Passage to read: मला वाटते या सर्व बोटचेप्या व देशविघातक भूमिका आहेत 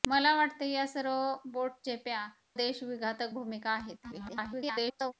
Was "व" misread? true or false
true